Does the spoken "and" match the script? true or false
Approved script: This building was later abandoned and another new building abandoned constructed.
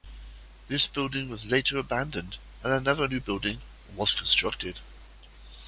true